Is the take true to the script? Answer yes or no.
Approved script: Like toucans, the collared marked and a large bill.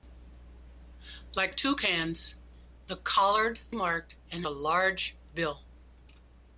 yes